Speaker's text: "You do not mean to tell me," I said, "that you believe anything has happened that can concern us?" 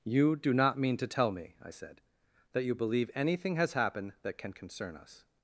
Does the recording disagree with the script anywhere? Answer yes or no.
no